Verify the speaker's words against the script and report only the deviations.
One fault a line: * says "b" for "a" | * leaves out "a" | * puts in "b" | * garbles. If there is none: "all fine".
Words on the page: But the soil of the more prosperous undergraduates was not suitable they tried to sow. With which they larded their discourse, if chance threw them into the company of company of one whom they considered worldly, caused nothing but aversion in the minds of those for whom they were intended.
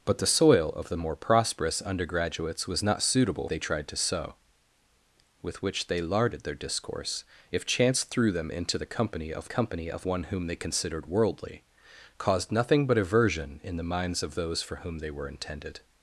all fine